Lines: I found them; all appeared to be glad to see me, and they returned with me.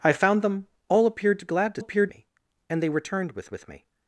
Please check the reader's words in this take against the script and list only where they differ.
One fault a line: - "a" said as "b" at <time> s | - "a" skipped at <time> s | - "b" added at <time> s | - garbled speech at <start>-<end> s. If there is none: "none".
- "be" skipped at 1.4 s
- "see" said as "appeared" at 1.8 s
- "with" added at 3.5 s